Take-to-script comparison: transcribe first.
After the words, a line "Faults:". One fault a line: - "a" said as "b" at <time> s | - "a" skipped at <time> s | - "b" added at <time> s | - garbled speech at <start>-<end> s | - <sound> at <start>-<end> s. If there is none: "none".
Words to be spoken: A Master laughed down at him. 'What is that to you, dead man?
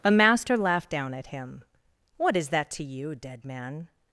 A Master laughed down at him. 'What is that to you, dead man?
Faults:
none